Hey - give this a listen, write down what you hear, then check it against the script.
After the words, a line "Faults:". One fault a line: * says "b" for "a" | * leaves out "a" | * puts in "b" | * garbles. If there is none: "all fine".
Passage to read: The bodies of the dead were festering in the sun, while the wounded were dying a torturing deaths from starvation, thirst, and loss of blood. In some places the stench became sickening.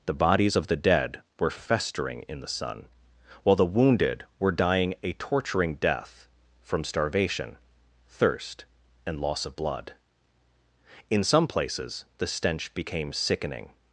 The bodies of the dead were festering in the sun, while the wounded were dying a torturing death from starvation, thirst, and loss of blood. In some places the stench became sickening.
Faults:
* says "death" for "deaths"